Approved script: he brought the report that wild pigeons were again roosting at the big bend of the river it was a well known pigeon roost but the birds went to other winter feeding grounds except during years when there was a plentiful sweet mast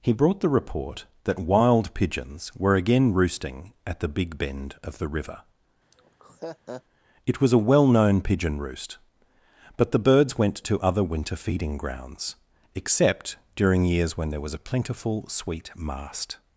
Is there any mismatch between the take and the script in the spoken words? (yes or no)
no